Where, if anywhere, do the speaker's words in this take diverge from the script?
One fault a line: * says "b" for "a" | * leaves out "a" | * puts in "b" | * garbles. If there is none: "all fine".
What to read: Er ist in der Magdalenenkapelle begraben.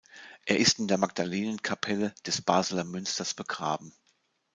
* puts in "des Basler Münsters"